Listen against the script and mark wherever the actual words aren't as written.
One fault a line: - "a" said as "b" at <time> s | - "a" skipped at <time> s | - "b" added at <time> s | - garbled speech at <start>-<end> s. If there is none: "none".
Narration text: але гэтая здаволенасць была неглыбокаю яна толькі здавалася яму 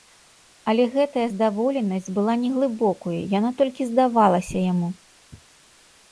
none